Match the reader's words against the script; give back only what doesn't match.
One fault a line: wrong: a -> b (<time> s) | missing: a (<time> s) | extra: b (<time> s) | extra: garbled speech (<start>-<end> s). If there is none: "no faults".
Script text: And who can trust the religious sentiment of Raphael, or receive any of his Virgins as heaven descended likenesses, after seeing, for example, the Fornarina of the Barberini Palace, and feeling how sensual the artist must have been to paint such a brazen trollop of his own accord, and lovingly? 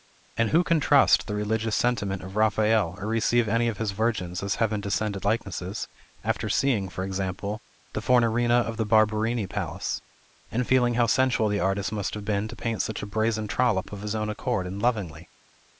no faults